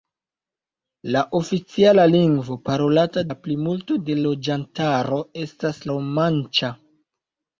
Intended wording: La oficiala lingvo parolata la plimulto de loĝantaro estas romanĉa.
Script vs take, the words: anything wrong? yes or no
no